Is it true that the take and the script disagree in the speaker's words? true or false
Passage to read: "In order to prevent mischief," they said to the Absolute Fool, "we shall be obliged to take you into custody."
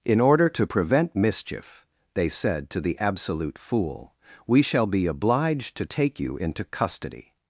false